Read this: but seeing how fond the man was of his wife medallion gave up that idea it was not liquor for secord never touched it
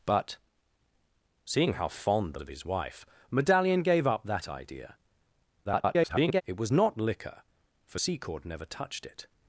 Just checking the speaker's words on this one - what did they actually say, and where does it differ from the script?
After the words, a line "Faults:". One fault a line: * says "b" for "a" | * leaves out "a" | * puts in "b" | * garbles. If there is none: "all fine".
but seeing how fond the of his wife medallion gave up that idea [garbled] it was not liquor for secord never touched it
Faults:
* leaves out "man was"
* garbles